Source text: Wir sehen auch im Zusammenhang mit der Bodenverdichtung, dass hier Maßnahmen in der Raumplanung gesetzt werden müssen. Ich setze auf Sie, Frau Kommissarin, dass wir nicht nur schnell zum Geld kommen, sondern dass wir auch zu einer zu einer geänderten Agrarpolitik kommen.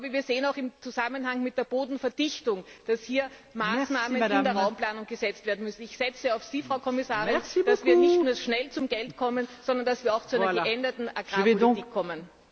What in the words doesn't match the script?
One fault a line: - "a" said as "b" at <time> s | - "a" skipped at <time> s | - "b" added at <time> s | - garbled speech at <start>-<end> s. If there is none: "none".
- "zu einer" skipped at 10.6 s